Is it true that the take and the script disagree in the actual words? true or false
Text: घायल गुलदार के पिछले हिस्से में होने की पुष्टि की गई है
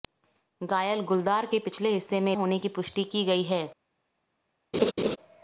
false